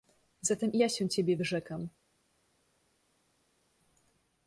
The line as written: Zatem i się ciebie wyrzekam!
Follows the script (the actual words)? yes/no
no